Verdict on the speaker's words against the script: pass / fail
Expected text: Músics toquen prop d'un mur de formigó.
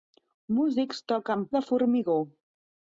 fail